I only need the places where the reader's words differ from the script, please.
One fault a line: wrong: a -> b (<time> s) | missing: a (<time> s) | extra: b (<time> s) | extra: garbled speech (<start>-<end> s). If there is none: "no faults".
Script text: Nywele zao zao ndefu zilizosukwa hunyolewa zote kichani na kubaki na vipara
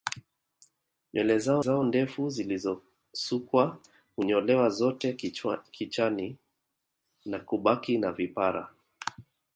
no faults